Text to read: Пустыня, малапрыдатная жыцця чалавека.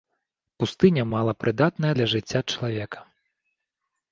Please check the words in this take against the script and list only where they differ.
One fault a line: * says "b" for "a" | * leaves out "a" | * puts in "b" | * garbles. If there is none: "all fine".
* puts in "для"